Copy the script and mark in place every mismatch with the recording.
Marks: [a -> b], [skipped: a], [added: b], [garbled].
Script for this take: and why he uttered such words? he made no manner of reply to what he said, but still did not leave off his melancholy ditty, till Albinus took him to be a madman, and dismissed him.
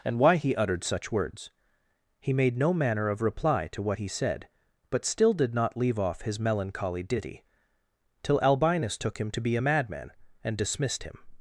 and why he uttered such words? he made no manner of reply to what he said, but still did not leave off his melancholy ditty, till Albinus took him to be a madman, and dismissed him.